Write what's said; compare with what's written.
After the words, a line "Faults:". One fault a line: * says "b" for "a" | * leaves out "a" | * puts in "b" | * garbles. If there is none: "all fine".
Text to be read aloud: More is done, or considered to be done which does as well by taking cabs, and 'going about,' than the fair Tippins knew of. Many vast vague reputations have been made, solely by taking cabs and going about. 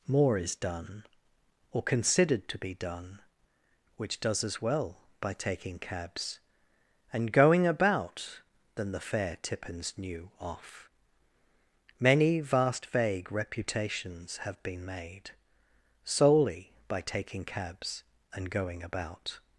More is done, or considered to be done which does as well by taking cabs, and 'going about,' than the fair Tippins knew off. Many vast vague reputations have been made, solely by taking cabs and going about.
Faults:
* says "off" for "of"